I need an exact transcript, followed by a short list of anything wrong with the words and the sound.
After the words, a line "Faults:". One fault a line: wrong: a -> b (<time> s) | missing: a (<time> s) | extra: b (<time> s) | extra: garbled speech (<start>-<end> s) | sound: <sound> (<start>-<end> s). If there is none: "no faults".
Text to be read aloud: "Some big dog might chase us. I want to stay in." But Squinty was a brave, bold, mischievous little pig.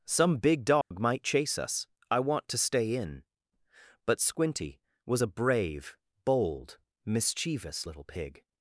"Some big dog might chase us. I want to stay in." But Squinty was a brave, bold, mischievous little pig.
Faults:
sound: dropout (0.8-0.9 s)